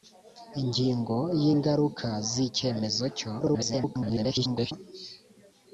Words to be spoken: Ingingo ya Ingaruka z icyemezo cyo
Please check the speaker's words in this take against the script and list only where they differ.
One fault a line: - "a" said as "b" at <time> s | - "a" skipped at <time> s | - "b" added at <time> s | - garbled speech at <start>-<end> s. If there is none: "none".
- garbled speech at 3.4-4.7 s